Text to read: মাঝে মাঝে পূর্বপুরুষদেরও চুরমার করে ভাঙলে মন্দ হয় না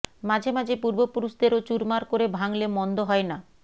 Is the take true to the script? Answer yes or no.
yes